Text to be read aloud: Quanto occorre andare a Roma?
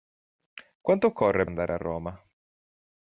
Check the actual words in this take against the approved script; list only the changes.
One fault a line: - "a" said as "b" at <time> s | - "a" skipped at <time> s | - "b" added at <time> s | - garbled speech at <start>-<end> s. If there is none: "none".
none